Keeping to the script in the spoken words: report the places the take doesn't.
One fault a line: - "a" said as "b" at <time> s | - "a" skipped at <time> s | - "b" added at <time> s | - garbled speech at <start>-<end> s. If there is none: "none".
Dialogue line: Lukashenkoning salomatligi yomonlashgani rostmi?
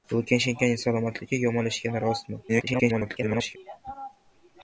- garbled speech at 2.5-3.6 s